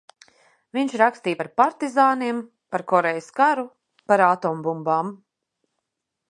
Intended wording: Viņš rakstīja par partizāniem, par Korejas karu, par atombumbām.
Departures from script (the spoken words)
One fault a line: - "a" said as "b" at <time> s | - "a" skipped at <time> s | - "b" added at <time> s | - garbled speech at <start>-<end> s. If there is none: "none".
none